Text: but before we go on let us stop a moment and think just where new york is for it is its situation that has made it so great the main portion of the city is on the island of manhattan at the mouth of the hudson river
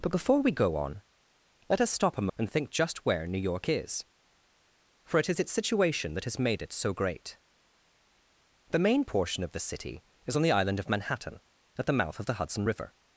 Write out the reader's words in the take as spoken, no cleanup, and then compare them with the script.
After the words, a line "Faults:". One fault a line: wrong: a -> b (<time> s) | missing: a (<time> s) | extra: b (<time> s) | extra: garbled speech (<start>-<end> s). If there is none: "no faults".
but before we go on let us stop a and think just where new york is for it is its situation that has made it so great the main portion of the city is on the island of manhattan at the mouth of the hudson river
Faults:
missing: moment (2.3 s)